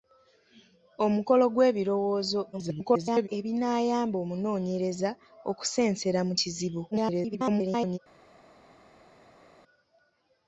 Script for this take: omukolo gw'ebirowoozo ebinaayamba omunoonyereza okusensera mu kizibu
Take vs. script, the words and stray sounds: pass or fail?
fail